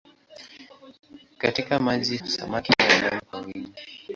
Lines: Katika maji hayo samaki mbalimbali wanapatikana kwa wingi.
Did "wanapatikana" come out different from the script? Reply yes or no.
yes